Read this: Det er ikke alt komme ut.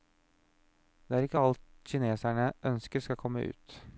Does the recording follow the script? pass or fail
fail